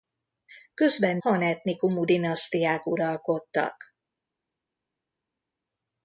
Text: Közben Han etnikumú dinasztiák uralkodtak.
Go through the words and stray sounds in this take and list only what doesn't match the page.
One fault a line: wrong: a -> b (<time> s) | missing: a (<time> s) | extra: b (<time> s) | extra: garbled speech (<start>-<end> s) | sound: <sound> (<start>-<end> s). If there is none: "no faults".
no faults